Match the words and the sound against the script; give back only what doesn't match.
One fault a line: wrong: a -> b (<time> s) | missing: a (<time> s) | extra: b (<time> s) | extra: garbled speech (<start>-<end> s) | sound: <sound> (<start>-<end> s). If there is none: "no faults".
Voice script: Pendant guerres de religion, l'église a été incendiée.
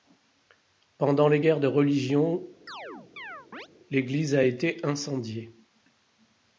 extra: les (1.3 s)
sound: chirp (2.7-3.7 s)